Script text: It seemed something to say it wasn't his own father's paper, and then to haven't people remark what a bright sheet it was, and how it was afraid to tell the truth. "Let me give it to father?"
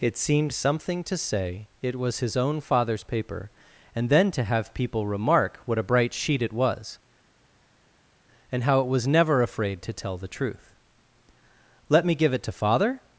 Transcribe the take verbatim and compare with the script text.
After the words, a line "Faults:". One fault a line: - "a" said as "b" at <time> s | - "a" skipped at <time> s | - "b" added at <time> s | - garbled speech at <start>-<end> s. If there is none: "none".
It seemed something to say it was his own father's paper, and then to have people remark what a bright sheet it was, and how it was never afraid to tell the truth. "Let me give it to father?"
Faults:
- "wasn't" said as "was" at 1.9 s
- "haven't" said as "have" at 4.4 s
- "never" added at 9.1 s